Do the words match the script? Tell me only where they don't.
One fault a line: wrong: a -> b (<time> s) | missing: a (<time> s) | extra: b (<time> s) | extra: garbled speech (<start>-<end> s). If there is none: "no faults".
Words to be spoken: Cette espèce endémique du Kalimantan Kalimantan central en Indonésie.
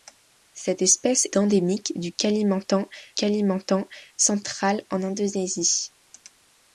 no faults